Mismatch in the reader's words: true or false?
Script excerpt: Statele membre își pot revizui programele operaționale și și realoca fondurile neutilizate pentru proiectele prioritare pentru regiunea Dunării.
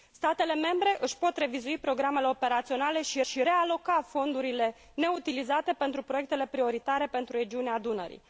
false